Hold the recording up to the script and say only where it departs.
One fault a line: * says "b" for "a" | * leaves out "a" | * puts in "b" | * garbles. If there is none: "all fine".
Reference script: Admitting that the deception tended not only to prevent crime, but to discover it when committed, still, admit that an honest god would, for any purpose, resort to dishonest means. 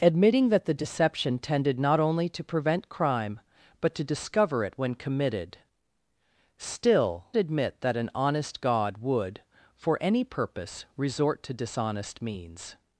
all fine